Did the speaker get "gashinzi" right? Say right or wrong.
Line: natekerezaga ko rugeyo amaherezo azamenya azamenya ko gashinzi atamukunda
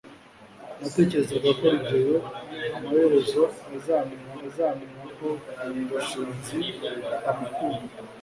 right